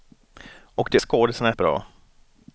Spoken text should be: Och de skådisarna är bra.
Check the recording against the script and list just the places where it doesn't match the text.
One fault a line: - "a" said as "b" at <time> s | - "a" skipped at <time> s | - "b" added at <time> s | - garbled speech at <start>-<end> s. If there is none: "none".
none